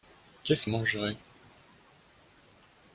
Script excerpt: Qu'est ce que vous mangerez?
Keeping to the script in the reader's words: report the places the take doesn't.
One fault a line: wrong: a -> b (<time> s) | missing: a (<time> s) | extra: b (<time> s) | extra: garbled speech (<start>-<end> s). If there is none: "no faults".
missing: que vous (0.7 s)